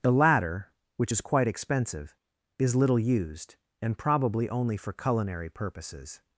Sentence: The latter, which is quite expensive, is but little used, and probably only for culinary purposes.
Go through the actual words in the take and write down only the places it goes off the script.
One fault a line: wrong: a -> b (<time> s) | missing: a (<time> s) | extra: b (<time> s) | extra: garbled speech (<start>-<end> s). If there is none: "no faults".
missing: but (2.7 s)